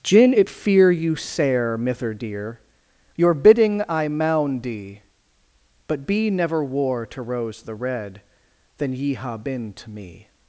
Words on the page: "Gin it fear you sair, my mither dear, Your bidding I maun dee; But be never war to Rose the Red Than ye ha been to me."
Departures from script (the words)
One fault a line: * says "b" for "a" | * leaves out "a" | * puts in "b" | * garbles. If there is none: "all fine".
* leaves out "my"